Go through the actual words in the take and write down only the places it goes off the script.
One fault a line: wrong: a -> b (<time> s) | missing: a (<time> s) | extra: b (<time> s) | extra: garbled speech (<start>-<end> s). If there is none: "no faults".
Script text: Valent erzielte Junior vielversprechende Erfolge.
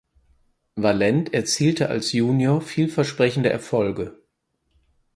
extra: als (1.9 s)